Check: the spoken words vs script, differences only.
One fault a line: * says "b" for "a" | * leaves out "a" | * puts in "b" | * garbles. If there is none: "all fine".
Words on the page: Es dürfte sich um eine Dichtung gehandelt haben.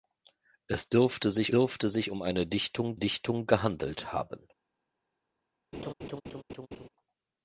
* puts in "dürfte sich"
* puts in "Dichtung"